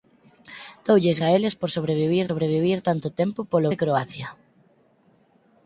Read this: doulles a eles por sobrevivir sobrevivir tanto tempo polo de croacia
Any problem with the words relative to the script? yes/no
no